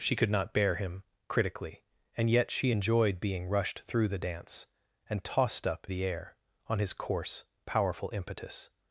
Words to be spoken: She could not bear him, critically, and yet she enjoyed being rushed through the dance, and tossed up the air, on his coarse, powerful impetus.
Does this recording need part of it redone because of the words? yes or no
no